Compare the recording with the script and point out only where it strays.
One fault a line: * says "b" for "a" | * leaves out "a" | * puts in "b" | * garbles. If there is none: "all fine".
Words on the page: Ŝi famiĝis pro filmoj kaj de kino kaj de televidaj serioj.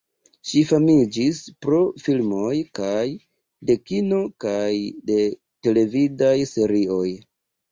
all fine